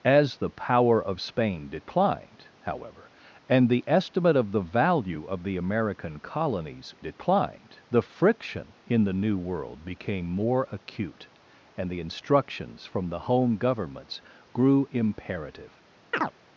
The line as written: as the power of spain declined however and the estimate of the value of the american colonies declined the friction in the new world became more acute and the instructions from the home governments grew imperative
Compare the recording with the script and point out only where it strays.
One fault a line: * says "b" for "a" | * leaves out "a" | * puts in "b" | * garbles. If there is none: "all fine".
all fine